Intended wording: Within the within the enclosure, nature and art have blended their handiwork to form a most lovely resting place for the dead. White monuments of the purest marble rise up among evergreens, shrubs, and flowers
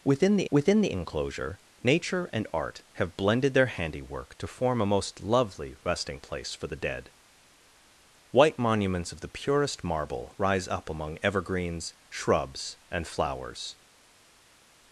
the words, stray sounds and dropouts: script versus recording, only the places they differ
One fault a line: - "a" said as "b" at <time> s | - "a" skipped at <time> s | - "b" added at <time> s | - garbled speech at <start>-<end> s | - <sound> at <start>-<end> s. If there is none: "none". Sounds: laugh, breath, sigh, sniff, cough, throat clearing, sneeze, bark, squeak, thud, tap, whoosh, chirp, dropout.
none